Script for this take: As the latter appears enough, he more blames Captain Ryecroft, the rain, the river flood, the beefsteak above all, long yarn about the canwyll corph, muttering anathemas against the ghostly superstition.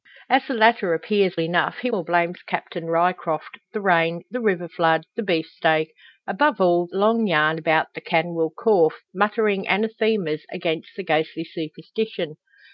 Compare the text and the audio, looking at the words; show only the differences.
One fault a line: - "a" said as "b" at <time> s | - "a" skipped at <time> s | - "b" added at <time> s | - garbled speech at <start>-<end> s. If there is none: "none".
none